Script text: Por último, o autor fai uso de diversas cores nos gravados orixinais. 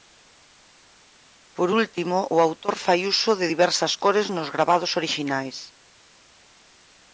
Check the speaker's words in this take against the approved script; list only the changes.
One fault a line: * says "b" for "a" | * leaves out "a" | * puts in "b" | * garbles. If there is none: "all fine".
all fine